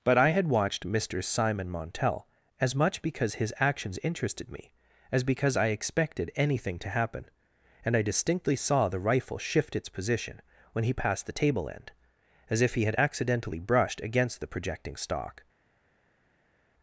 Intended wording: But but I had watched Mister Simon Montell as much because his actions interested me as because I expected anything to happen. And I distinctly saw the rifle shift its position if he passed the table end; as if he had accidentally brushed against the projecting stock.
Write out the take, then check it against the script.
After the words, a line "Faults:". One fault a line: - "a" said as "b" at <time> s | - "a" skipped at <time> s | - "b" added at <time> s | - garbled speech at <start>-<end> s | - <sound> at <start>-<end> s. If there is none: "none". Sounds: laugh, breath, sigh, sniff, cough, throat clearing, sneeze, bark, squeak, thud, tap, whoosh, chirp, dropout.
But I had watched Mister Simon Montell as much because his actions interested me as because I expected anything to happen. And I distinctly saw the rifle shift its position when he passed the table end; as if he had accidentally brushed against the projecting stock.
Faults:
- "but" skipped at 0.2 s
- "if" said as "when" at 10.7 s